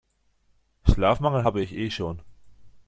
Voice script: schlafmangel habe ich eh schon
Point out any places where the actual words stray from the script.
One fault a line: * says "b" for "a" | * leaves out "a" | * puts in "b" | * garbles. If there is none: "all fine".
all fine